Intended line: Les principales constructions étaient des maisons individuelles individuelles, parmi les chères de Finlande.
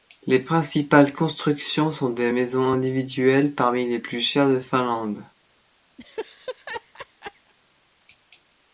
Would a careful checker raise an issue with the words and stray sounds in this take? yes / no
yes